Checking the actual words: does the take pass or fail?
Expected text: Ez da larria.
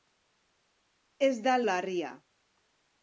pass